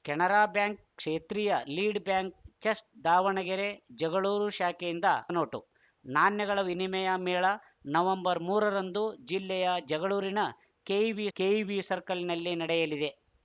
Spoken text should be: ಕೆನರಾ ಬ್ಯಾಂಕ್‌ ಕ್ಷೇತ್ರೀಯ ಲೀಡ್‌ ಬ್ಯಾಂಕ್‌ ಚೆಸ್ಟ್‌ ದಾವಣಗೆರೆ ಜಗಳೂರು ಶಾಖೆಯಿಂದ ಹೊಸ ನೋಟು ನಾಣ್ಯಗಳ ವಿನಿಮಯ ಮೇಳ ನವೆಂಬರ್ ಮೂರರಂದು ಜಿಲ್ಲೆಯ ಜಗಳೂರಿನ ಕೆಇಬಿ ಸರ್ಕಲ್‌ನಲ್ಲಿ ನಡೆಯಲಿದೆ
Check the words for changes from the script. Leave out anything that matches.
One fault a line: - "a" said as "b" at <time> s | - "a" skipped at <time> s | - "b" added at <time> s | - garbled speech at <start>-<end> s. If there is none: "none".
- "ಹೊಸ" skipped at 5.1 s
- "ಕೆಇಬಿ" added at 11.4 s